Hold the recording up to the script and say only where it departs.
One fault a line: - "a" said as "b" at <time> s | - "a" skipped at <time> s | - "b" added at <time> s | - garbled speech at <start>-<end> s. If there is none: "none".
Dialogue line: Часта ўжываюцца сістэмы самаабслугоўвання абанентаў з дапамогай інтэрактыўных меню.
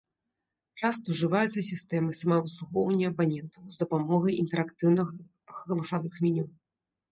- "галасавых" added at 5.6 s